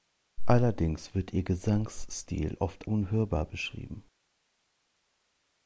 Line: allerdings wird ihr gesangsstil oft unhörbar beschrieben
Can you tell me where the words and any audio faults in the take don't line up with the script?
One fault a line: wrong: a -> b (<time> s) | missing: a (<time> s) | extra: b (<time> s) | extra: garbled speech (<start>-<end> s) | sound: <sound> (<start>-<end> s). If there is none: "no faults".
no faults